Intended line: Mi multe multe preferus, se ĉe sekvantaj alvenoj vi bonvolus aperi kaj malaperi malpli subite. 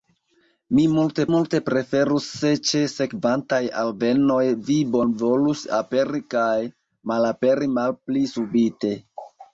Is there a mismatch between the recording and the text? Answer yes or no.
no